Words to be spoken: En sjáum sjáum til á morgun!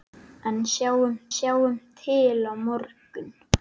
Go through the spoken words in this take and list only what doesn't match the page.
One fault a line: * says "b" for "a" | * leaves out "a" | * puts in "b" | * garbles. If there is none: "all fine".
all fine